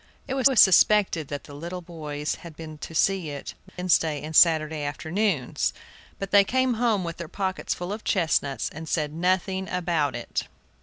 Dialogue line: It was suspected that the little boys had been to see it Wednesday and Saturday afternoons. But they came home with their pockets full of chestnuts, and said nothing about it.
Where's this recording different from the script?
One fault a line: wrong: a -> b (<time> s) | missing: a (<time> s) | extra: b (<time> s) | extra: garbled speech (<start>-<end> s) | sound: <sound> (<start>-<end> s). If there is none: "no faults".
extra: was (0.4 s)
sound: dropout (3.7-3.8 s)